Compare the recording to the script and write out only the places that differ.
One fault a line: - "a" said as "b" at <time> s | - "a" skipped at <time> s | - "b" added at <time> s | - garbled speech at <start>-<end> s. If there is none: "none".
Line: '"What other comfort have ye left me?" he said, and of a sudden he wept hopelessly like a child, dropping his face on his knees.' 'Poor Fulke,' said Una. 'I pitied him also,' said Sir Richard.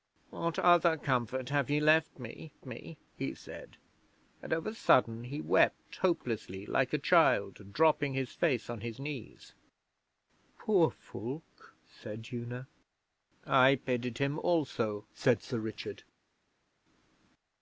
- "me" added at 2.6 s